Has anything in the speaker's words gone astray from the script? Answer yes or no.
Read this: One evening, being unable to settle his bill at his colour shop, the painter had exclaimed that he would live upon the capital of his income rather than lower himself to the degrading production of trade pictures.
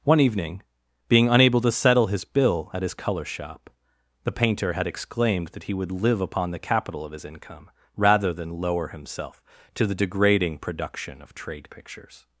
no